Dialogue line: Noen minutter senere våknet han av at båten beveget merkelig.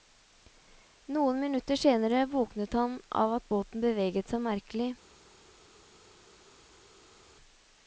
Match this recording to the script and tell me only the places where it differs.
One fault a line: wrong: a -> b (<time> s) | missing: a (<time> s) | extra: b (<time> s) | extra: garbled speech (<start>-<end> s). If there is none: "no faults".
extra: seg (4.3 s)